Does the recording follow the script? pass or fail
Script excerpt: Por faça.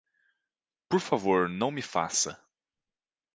fail